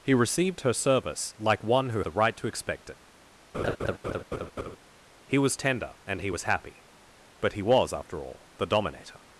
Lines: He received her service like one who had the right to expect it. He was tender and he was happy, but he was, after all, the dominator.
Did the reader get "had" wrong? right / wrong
wrong